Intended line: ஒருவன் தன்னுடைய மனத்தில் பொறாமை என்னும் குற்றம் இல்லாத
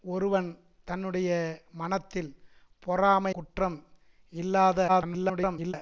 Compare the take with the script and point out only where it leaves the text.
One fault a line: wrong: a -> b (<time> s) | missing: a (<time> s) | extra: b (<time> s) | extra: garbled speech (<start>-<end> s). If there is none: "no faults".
missing: என்னும் (3.3 s)
extra: garbled speech (4.9-5.7 s)